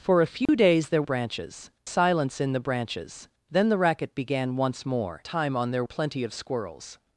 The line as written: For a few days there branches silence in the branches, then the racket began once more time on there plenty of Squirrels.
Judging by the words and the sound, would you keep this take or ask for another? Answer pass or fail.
fail